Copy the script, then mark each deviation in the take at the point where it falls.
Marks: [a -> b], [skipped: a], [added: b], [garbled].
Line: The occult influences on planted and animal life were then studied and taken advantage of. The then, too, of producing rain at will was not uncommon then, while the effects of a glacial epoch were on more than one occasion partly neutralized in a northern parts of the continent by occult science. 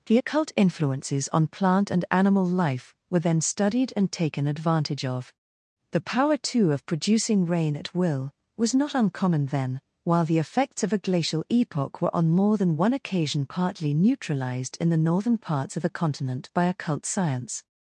The occult influences on [planted -> plant] and animal life were then studied and taken advantage of. The [then, -> power] too, of producing rain at will was not uncommon then, while the effects of a glacial epoch were on more than one occasion partly neutralized in [a -> the] northern parts of the continent by occult science.